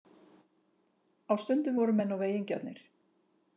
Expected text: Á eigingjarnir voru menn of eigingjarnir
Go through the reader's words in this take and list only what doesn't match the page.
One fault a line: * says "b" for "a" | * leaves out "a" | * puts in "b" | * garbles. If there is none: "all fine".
* says "stundum" for "eigingjarnir"